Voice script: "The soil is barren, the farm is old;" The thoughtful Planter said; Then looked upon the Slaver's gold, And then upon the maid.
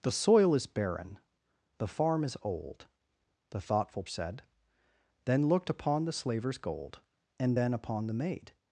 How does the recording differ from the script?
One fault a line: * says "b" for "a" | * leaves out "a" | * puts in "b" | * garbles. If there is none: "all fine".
* leaves out "Planter"